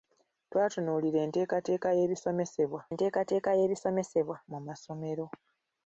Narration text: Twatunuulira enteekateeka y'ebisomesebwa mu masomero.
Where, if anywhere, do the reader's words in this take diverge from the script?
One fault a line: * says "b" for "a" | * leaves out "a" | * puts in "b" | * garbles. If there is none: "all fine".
* puts in "enteekateeka y'ebisomesebwa"